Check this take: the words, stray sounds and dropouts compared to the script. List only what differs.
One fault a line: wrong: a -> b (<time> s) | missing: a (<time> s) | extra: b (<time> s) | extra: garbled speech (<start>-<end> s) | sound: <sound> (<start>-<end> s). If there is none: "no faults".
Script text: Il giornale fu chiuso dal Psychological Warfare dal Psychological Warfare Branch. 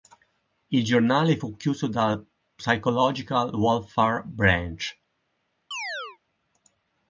missing: dal Psychological Warfare (4.2 s)
sound: chirp (5.7-6.2 s)